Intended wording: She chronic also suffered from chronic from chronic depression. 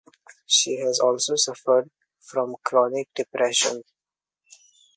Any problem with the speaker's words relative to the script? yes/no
yes